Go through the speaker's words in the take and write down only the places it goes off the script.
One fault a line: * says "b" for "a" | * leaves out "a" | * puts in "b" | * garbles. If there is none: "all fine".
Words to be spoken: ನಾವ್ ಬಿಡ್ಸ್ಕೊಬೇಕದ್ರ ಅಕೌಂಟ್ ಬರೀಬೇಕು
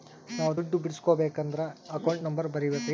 * puts in "ದುಡ್ಡು"
* puts in "ನಂಬರ್"